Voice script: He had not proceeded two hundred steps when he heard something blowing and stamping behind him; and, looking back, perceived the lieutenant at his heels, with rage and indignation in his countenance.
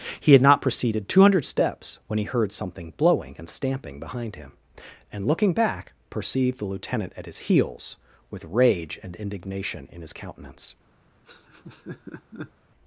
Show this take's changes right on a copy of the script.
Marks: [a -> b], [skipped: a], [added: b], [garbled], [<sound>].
He had not proceeded two hundred steps when he heard something blowing and stamping behind him; and, looking back, perceived the lieutenant at his heels, with rage and indignation in his countenance. [laugh]